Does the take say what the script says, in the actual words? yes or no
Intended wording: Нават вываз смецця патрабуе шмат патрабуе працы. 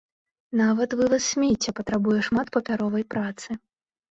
no